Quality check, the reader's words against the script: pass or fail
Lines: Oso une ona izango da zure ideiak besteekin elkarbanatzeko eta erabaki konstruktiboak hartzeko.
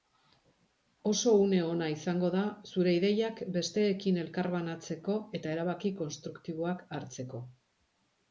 pass